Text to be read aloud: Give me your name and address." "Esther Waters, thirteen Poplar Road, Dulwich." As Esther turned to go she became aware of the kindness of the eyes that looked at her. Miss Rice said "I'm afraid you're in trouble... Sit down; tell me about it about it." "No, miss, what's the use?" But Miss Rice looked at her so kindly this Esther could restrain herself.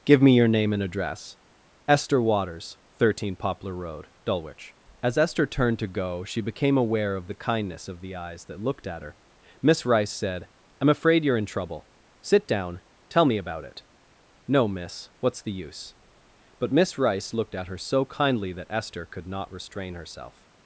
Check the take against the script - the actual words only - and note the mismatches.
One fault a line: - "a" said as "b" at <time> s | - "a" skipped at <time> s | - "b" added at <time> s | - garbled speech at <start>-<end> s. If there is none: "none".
- "about it" skipped at 13.8 s
- "this" said as "that" at 18.5 s
- "not" added at 19.3 s